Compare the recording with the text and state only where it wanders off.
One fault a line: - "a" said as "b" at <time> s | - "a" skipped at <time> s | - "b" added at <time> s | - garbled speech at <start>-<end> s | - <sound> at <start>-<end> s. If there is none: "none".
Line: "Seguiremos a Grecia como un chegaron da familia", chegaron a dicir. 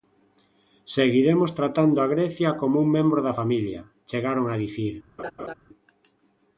- "tratando" added at 1.6 s
- "chegaron" said as "membro" at 3.0 s
- laugh at 5.2-5.5 s